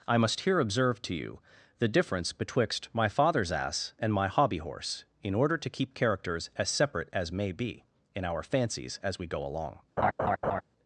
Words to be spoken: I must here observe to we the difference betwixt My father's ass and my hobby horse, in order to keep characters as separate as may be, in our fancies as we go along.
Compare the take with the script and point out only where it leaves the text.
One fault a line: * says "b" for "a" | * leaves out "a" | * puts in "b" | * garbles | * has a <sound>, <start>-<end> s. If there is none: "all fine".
* says "you" for "we"
* has a laugh, 10.0-10.6 s